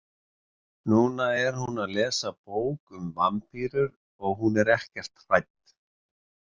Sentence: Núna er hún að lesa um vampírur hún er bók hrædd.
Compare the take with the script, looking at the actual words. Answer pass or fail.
fail